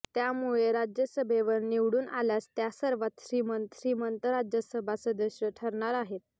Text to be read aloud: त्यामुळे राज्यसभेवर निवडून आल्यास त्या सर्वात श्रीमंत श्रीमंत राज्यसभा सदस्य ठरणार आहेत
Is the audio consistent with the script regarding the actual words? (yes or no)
yes